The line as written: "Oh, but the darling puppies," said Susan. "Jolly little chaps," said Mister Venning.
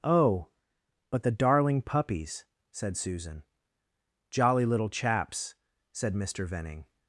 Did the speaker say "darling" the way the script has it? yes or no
yes